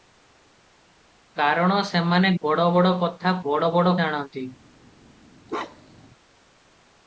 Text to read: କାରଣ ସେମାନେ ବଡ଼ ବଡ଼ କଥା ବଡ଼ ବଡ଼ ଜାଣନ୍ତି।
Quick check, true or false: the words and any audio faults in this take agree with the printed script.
false